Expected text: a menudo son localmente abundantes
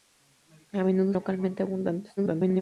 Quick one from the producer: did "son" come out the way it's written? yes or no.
no